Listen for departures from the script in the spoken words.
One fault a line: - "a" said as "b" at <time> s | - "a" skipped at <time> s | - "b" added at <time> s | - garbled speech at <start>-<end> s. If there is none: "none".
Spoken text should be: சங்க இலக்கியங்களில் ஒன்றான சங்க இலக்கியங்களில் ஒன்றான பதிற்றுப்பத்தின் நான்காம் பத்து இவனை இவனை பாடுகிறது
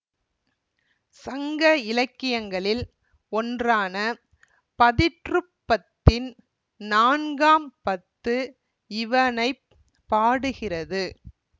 - "சங்க இலக்கியங்களில் ஒன்றான" skipped at 4.0 s
- "இவனை" skipped at 9.5 s